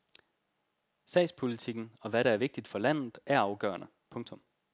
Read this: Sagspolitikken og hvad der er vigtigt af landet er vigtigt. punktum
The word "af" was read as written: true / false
false